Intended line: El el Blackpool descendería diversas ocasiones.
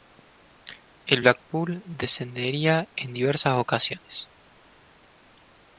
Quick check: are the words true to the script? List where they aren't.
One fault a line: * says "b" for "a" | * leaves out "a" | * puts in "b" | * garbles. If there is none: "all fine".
* leaves out "el"
* puts in "en"